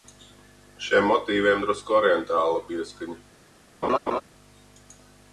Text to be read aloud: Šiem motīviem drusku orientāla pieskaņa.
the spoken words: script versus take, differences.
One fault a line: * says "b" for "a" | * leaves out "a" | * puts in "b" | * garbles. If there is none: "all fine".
all fine